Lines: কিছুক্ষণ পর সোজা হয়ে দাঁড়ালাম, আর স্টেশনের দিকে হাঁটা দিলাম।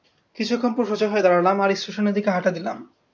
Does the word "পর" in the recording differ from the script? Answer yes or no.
no